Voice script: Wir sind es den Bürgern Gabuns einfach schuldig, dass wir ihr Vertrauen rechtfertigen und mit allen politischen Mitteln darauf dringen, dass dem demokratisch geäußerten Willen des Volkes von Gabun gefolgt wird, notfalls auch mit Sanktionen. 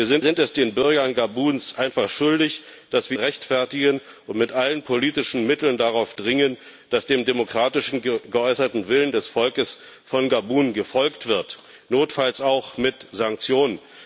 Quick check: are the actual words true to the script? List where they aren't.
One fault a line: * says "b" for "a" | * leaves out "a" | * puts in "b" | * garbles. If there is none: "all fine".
* puts in "sind"
* leaves out "ihr Vertrauen"